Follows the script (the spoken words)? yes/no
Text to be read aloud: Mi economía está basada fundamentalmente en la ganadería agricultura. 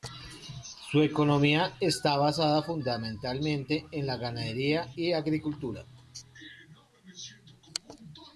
no